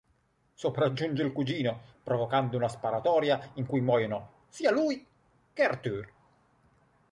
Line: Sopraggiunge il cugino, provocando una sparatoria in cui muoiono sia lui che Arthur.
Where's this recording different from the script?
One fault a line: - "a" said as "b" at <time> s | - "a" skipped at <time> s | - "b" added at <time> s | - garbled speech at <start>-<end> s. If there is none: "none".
none